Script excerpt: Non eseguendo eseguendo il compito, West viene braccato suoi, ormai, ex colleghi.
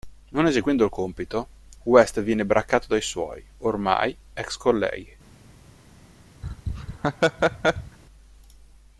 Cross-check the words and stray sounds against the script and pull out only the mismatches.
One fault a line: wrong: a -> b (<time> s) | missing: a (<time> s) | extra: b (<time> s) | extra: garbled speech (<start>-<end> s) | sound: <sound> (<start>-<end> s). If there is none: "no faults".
missing: eseguendo (0.8 s)
extra: dai (2.9 s)
sound: laugh (6.4-8.0 s)